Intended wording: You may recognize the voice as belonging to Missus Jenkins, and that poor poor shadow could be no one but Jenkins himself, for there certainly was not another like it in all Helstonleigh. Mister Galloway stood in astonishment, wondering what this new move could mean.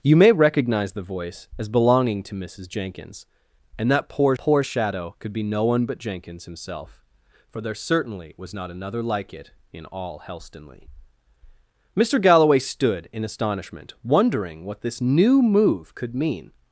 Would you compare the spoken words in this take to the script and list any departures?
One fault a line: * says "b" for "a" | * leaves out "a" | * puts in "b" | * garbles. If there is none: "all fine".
all fine